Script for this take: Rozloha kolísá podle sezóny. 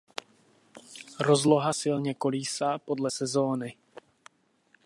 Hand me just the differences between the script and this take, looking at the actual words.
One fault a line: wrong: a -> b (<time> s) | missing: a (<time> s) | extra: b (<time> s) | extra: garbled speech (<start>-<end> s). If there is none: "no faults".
extra: silně (1.7 s)